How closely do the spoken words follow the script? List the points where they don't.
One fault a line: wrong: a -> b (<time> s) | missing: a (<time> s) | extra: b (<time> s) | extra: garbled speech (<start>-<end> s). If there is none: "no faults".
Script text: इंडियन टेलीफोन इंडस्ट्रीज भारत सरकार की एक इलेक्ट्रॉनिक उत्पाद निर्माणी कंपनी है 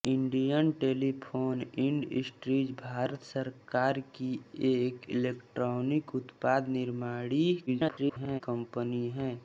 extra: garbled speech (7.7-8.4 s)